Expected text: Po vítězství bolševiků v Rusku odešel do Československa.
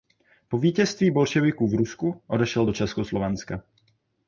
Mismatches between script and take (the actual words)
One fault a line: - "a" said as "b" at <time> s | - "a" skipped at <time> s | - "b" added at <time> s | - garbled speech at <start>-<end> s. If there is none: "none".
none